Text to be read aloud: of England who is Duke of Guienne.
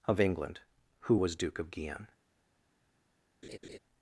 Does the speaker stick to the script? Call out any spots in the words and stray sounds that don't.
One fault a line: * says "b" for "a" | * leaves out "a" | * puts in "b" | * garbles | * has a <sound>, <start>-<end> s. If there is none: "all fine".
* says "was" for "is"
* has a laugh, 3.4-3.8 s